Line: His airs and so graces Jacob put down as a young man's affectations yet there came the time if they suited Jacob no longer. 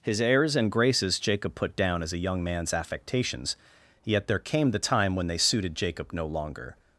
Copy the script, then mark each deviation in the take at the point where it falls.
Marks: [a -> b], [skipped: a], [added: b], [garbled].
His airs and [skipped: so] graces Jacob put down as a young man's affectations yet there came the time [if -> when] they suited Jacob no longer.